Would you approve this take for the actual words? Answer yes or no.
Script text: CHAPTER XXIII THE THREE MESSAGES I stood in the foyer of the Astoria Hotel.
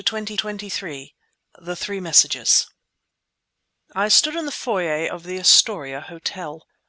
no